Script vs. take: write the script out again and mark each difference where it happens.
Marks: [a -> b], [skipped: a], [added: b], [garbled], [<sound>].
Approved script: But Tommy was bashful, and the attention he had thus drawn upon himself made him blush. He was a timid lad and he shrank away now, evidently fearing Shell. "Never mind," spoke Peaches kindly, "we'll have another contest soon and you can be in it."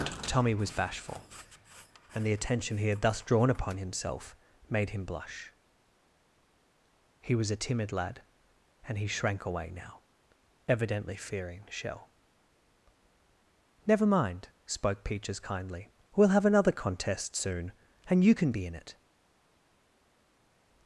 [skipped: But] Tommy was bashful, and the attention he had thus drawn upon himself made him blush. He was a timid lad and he shrank away now, evidently fearing Shell. "Never mind," spoke Peaches kindly, "we'll have another contest soon and you can be in it."